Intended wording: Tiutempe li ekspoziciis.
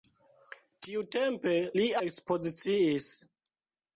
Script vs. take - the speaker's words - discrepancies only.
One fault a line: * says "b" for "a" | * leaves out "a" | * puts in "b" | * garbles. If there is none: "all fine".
all fine